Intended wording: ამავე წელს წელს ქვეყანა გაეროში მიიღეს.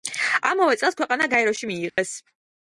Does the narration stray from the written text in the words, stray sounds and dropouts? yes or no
yes